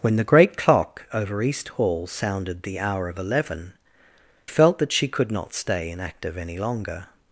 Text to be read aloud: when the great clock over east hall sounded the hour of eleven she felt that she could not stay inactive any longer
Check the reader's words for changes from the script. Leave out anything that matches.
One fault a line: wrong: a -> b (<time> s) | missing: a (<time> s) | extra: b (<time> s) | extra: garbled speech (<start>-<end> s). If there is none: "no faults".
missing: she (3.7 s)